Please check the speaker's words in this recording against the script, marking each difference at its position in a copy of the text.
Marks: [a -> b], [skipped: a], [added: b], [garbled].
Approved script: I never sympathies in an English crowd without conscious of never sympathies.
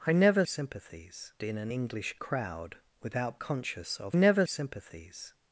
I never sympathies in an English crowd without conscious of never sympathies.